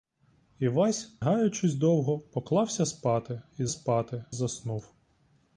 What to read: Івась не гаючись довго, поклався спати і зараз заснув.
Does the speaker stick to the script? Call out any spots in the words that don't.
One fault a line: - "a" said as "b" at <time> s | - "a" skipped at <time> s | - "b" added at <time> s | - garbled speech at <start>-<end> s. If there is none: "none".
- "не" skipped at 1.1 s
- "зараз" said as "спати" at 3.7 s